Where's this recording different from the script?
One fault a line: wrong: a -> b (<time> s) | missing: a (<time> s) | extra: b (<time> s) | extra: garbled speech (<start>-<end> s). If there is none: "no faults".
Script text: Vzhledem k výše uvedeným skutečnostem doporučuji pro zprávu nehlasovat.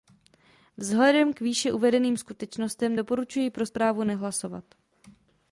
no faults